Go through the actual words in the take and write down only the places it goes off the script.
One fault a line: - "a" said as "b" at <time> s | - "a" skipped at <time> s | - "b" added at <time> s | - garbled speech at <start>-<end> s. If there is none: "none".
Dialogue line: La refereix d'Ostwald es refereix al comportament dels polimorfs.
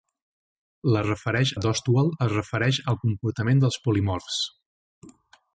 none